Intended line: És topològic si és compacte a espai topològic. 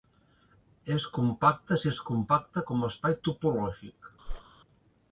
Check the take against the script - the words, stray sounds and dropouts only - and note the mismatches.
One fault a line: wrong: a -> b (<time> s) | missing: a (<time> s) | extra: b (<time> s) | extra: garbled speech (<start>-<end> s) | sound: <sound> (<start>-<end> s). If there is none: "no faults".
wrong: topològic -> compacte (1.2 s)
extra: com (2.7 s)
sound: whoosh (4.3-4.4 s)